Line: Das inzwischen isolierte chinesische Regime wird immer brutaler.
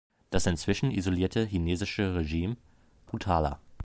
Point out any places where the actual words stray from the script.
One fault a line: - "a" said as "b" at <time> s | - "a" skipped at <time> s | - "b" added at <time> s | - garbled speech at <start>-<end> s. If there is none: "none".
- "wird immer" skipped at 2.6 s